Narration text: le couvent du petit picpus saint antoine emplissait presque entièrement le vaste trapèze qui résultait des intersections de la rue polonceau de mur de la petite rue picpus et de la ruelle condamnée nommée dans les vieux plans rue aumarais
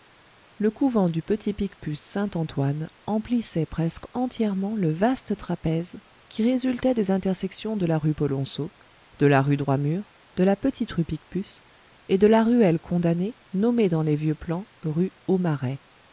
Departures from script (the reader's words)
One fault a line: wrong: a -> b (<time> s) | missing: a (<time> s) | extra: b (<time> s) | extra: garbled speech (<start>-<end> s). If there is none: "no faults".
extra: la rue droit (9.3 s)